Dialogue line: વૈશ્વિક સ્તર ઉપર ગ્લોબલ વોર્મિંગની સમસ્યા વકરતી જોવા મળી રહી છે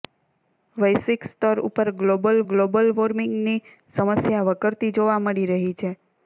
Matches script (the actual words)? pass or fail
fail